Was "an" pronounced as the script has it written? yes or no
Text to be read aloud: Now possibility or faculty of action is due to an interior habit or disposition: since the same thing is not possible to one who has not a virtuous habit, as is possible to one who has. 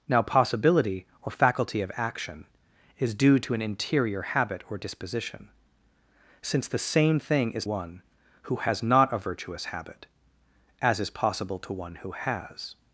yes